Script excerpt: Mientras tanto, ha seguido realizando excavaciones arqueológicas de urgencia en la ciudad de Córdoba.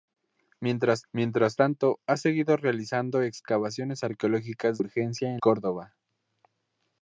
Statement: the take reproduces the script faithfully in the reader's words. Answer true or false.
false